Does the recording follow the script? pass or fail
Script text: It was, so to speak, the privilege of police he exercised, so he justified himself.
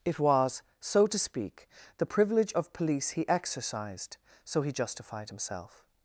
pass